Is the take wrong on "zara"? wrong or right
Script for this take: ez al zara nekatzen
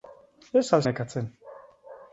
wrong